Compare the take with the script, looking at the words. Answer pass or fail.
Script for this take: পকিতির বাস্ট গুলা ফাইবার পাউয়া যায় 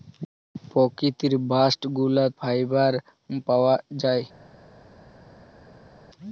pass